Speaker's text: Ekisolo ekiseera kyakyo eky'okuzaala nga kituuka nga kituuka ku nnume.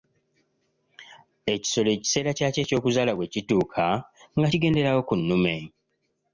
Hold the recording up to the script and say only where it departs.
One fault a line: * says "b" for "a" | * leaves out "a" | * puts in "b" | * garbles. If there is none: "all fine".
* says "bwe" for "nga"
* says "kigenderawo" for "kituuka"